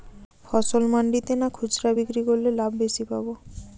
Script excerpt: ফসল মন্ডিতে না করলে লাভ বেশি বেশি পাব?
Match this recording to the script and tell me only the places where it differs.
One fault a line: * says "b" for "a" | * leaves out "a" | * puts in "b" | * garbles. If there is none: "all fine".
* puts in "খুচরা বিক্রি"
* leaves out "বেশি"